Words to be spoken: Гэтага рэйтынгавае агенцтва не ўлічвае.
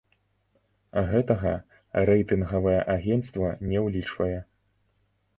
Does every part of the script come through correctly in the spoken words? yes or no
yes